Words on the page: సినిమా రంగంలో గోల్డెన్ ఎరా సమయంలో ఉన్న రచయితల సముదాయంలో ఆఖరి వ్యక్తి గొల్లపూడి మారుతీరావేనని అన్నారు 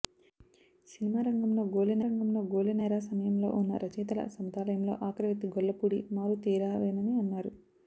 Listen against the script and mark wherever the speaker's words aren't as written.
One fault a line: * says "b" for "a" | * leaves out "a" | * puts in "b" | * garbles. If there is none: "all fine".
* puts in "రంగంలో గోల్డెన్"